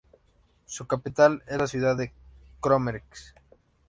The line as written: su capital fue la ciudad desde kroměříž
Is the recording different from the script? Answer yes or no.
yes